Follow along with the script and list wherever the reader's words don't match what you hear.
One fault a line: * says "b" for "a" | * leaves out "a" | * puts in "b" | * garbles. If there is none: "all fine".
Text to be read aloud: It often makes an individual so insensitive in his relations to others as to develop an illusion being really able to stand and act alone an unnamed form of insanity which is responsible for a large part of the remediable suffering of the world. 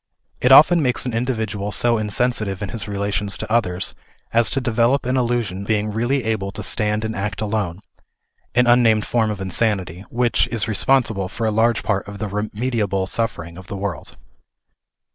all fine